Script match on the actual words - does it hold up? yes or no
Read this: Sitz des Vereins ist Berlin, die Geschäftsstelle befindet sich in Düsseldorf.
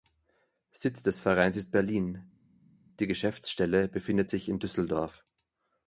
yes